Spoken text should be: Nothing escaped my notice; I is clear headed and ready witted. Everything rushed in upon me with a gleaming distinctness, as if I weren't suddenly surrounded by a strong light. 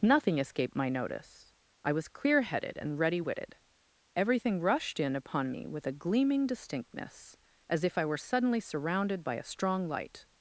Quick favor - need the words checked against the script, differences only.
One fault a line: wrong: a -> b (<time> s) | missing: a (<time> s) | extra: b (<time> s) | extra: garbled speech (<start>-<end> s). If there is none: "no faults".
wrong: is -> was (1.9 s)
wrong: weren't -> were (8.0 s)